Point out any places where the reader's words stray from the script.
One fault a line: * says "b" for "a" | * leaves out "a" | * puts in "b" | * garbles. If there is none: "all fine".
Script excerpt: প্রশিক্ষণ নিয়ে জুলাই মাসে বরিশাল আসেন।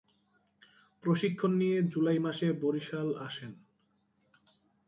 all fine